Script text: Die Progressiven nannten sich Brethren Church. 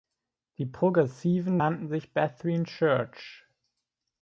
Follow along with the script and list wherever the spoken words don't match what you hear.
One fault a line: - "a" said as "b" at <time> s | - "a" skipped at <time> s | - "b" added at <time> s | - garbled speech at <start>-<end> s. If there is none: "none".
none